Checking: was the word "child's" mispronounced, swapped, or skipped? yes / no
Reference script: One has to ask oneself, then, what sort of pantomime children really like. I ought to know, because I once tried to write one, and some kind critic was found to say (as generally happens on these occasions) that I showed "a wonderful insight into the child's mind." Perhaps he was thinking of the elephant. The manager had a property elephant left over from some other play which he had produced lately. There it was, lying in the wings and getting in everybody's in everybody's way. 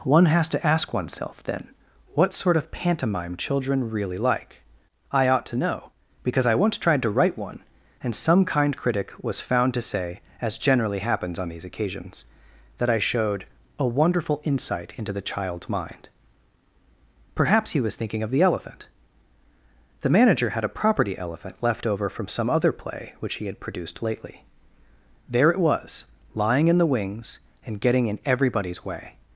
no